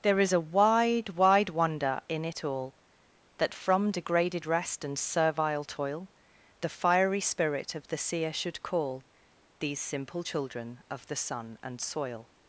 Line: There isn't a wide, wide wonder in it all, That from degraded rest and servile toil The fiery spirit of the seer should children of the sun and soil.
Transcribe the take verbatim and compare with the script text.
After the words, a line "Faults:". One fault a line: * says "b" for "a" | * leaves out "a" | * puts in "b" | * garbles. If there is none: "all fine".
There is a wide, wide wonder in it all, That from degraded rest and servile toil The fiery spirit of the seer should call These simple children of the sun and soil.
Faults:
* says "is" for "isn't"
* puts in "call These simple"